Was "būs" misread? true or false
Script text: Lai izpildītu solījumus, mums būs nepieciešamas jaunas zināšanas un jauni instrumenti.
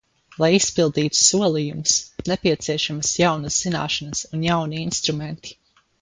true